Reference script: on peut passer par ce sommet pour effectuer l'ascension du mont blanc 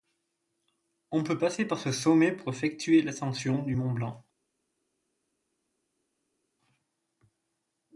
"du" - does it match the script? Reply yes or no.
yes